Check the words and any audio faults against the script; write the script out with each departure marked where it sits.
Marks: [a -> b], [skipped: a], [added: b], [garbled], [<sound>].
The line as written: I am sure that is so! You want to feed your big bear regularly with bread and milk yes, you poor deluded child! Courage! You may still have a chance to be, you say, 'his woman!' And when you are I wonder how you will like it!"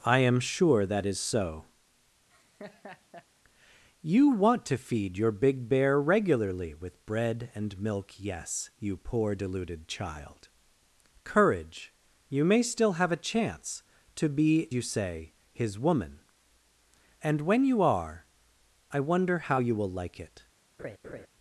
I am sure that is so! [laugh] You want to feed your big bear regularly with bread and milk yes, you poor deluded child! Courage! You may still have a chance to be, you say, 'his woman!' And when you are I wonder how you will like it!" [laugh]